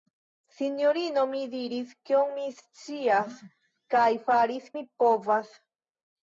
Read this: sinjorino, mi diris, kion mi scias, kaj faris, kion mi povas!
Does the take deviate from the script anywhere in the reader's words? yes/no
yes